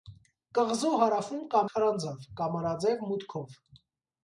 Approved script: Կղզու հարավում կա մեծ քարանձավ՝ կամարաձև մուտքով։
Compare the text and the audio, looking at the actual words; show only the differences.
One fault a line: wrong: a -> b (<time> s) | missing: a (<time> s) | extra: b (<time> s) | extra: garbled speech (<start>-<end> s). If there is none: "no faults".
missing: մեծ (1.6 s)